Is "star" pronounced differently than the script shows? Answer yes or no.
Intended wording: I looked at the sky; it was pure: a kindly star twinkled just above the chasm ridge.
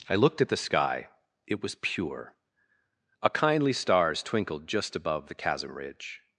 yes